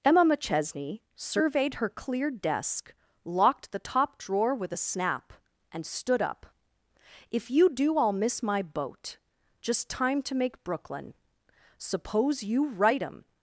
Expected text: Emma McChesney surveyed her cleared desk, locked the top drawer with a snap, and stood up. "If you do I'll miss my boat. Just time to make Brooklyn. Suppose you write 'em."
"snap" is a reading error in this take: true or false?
false